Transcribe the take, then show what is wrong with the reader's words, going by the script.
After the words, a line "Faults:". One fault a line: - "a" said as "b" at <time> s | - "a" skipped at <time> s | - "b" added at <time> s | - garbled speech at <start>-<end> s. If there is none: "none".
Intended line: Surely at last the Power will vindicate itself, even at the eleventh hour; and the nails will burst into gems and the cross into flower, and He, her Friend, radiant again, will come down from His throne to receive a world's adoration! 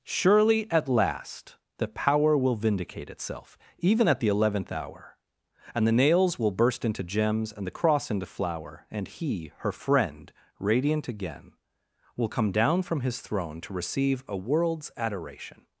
Surely at last the Power will vindicate itself, even at the eleventh hour; and the nails will burst into gems and the cross into flower, and He, her Friend, radiant again, will come down from His throne to receive a world's adoration!
Faults:
none